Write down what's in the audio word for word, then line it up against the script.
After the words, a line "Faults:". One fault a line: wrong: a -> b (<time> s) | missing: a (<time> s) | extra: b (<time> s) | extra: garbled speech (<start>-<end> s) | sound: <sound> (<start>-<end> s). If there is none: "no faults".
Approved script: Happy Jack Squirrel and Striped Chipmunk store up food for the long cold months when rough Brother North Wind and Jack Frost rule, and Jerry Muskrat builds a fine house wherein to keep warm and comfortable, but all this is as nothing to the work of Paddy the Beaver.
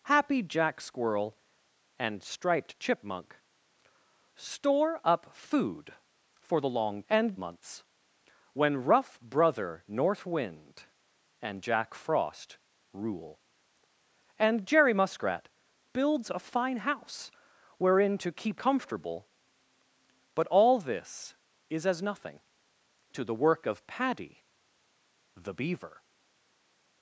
Happy Jack Squirrel and Striped Chipmunk store up food for the long and months when rough Brother North Wind and Jack Frost rule, and Jerry Muskrat builds a fine house wherein to keep comfortable, but all this is as nothing to the work of Paddy the Beaver.
Faults:
wrong: cold -> and (7.1 s)
missing: warm and (18.6 s)